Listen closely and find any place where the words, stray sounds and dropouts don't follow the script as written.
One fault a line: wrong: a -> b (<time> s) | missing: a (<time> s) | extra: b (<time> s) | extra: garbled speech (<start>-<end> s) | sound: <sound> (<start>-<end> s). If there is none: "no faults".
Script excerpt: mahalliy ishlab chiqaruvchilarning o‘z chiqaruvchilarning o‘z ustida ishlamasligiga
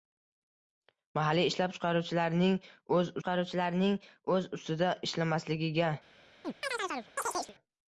sound: chirp (6.4-7.6 s)